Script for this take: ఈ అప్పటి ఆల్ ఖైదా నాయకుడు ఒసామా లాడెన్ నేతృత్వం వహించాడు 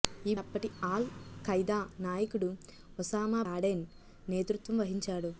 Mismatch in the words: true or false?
false